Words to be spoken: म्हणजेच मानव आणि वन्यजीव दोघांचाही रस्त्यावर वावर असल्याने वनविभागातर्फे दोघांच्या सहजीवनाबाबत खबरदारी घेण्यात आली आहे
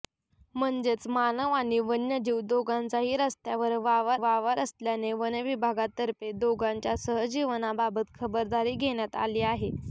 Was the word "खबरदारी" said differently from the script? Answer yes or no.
no